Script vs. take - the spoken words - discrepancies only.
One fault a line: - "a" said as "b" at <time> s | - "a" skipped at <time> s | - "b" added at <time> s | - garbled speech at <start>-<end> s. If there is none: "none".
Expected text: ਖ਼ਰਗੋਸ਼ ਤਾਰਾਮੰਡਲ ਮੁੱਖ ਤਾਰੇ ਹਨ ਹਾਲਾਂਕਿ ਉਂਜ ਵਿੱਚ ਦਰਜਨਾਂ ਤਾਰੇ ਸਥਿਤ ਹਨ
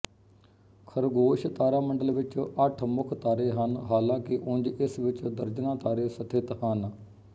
- "ਵਿੱਚ ਅੱਠ" added at 2.1 s
- "ਇਸ" added at 4.7 s